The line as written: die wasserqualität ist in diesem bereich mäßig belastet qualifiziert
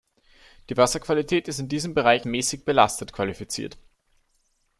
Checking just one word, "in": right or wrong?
right